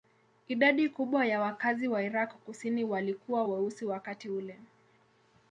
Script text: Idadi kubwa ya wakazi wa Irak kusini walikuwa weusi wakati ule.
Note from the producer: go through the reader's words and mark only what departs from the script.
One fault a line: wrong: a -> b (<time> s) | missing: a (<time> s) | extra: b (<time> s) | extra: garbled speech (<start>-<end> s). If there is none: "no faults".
no faults